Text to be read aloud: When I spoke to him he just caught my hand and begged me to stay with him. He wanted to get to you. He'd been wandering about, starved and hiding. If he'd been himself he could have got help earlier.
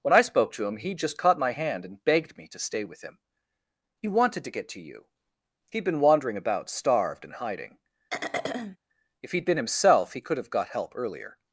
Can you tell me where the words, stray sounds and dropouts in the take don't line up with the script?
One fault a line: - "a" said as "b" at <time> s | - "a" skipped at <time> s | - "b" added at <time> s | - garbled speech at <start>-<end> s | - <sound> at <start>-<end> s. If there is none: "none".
- throat clearing at 8.1-8.8 s